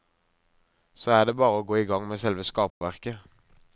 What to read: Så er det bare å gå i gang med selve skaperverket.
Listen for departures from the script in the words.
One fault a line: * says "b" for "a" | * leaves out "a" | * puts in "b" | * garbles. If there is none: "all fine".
all fine